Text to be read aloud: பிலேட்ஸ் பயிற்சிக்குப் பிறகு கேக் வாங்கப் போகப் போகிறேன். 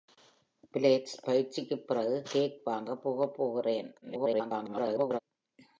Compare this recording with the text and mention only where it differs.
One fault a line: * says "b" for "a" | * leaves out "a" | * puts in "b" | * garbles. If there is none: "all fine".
* garbles